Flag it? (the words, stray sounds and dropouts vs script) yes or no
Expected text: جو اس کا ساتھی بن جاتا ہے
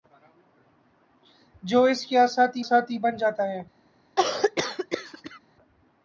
yes